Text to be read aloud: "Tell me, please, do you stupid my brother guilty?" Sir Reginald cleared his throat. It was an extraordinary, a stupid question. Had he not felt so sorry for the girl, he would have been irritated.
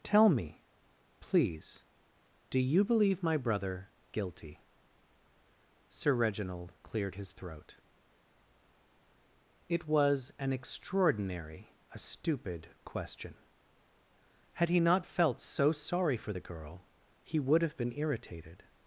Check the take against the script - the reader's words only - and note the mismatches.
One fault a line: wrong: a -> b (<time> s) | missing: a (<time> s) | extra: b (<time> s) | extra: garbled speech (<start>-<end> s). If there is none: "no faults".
wrong: stupid -> believe (2.8 s)